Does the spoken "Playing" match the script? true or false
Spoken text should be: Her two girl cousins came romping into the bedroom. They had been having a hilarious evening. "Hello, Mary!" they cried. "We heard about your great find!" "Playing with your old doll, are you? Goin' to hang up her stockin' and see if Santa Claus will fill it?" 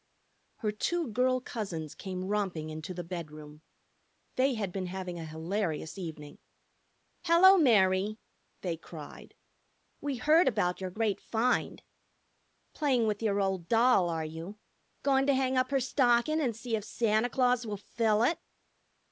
true